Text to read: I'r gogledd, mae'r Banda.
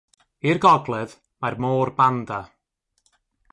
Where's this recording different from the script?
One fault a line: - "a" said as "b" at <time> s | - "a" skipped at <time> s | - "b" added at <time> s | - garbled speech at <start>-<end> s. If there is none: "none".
- "Môr" added at 1.6 s